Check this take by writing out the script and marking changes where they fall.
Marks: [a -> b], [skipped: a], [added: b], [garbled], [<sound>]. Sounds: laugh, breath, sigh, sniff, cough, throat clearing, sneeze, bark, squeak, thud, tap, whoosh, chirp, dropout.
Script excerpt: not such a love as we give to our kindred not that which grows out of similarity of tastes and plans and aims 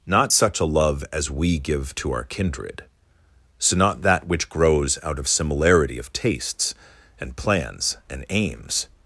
not such a love as we give to our kindred [added: so] not that which grows out of similarity of tastes and plans and aims